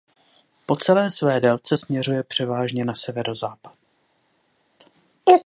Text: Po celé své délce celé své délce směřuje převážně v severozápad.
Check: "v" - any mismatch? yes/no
yes